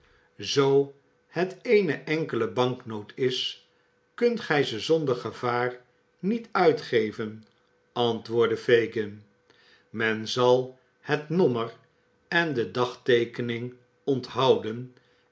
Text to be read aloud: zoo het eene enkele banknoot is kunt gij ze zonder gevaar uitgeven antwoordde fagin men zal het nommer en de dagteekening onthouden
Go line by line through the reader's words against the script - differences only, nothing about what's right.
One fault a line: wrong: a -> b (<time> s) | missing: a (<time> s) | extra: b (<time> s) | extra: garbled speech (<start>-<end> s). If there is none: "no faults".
extra: niet (6.2 s)